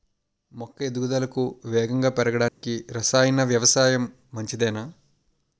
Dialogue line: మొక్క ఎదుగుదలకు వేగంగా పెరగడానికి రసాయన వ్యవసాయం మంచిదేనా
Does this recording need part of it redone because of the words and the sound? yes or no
yes